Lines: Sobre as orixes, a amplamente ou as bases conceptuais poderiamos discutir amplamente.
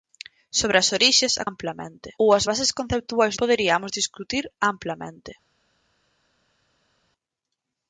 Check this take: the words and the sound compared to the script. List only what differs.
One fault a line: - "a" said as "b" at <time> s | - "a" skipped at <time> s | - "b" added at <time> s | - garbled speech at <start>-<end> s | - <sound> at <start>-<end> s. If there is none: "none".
none